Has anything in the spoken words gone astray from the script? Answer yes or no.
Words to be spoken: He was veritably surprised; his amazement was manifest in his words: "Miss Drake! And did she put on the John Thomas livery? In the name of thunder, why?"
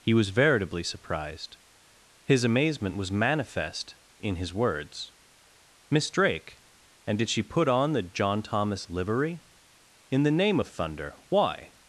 no